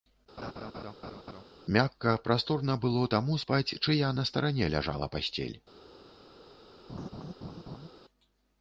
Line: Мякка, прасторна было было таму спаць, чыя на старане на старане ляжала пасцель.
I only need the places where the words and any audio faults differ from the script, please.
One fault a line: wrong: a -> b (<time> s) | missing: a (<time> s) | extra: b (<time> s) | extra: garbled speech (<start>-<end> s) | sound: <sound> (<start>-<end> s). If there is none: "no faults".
sound: laugh (0.4-1.4 s)
missing: было (3.0 s)
missing: на старане (4.7 s)
sound: laugh (6.9-7.9 s)